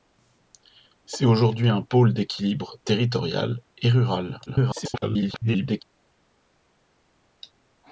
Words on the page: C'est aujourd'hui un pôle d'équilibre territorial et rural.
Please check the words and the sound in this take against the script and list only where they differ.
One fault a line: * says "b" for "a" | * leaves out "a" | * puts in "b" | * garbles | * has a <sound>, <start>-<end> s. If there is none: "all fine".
* garbles